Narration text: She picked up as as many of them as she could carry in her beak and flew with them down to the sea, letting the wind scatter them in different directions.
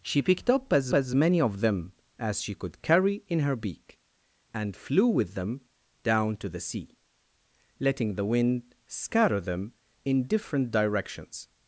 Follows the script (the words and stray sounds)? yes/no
yes